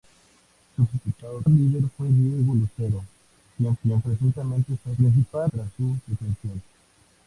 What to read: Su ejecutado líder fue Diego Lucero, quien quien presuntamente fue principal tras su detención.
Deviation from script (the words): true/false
false